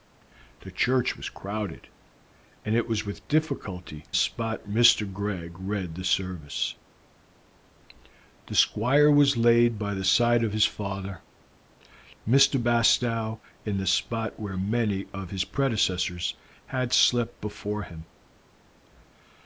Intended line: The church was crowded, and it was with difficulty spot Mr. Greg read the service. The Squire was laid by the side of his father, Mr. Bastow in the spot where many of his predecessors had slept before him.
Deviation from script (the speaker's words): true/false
false